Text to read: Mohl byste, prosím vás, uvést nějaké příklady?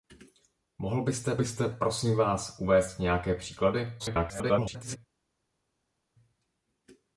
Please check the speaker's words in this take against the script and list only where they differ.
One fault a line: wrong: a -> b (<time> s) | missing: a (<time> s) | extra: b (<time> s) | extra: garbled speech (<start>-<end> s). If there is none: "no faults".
extra: byste (1.3 s)
extra: garbled speech (4.0-5.0 s)